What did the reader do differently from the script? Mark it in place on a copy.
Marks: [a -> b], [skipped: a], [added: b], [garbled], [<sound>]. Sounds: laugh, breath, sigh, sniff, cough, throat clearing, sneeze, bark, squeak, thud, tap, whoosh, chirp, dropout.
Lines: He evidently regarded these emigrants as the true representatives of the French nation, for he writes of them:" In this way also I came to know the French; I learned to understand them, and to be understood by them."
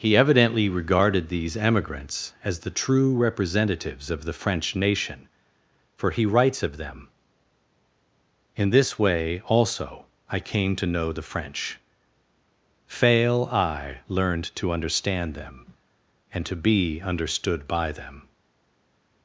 He evidently regarded these emigrants as the true representatives of the French nation, for he writes of them:" In this way also I came to know the French; [added: fail] I learned to understand them, and to be understood by them."